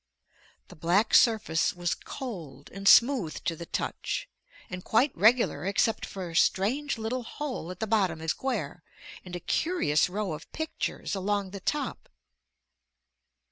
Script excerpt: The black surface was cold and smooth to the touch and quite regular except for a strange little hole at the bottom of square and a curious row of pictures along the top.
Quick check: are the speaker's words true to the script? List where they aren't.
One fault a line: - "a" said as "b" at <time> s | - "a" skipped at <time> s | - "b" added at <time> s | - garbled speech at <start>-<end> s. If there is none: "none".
none